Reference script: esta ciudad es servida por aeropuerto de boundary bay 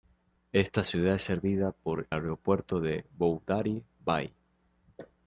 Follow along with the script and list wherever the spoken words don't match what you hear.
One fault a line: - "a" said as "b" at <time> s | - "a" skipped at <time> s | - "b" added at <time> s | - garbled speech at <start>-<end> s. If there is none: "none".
none